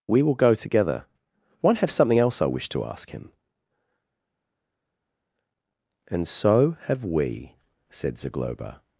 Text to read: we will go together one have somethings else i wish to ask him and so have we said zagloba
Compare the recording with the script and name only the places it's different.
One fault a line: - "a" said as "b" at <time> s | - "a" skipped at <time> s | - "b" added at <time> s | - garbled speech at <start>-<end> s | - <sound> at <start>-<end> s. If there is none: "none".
- "somethings" said as "something" at 1.9 s